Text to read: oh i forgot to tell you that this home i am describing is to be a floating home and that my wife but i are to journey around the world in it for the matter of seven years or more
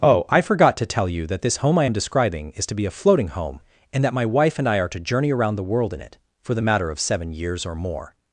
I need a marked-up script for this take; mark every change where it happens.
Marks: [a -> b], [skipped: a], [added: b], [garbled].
oh i forgot to tell you that this home i am describing is to be a floating home and that my wife [but -> and] i are to journey around the world in it for the matter of seven years or more